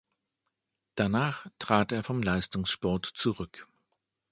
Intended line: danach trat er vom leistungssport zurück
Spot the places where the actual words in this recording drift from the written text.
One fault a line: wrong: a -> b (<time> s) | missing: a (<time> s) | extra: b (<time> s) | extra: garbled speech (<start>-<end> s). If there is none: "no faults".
no faults